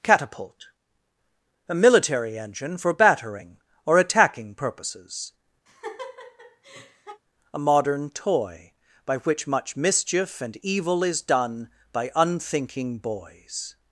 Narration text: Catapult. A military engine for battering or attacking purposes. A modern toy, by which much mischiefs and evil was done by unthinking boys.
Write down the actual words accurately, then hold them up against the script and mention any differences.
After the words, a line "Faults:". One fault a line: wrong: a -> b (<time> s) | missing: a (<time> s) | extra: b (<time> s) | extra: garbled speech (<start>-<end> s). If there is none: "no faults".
Catapult. A military engine for battering or attacking purposes. A modern toy, by which much mischief and evil is done by unthinking boys.
Faults:
wrong: mischiefs -> mischief (9.8 s)
wrong: was -> is (11.0 s)